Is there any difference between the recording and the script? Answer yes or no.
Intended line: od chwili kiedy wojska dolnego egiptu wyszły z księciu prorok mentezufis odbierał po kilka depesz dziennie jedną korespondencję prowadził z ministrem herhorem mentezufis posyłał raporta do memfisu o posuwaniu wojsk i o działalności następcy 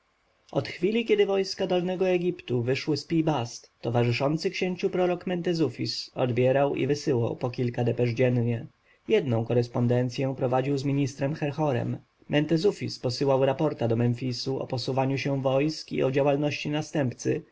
yes